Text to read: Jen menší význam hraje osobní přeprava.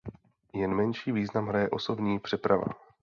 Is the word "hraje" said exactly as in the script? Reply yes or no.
yes